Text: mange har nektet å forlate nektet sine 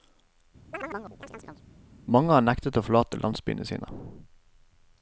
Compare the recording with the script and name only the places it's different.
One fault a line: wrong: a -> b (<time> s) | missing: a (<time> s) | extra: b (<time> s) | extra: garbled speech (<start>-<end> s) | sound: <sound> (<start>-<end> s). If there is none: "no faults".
sound: chirp (0.7-1.7 s)
wrong: nektet -> landsbyene (3.2 s)